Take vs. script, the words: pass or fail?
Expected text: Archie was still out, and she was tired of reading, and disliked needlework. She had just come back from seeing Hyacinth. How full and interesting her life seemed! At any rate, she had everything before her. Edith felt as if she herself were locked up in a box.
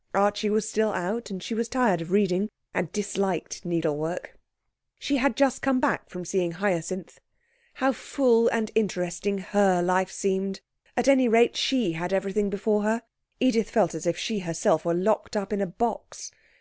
pass